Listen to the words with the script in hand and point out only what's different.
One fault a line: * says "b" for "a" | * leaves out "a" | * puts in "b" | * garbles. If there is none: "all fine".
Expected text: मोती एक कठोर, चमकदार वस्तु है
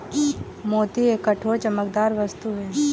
all fine